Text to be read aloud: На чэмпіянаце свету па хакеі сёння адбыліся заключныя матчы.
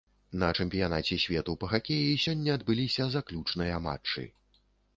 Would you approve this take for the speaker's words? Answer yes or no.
yes